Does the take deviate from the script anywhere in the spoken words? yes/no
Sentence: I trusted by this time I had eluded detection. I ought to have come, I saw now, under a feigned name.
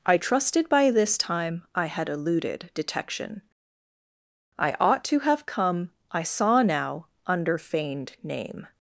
yes